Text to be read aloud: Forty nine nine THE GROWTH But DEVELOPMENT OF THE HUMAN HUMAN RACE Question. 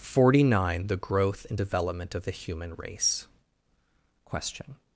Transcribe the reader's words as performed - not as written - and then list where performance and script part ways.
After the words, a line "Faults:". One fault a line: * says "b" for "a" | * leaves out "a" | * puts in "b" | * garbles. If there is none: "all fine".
Forty nine THE GROWTH AND DEVELOPMENT OF THE HUMAN RACE Question.
Faults:
* leaves out "nine"
* says "AND" for "But"
* leaves out "HUMAN"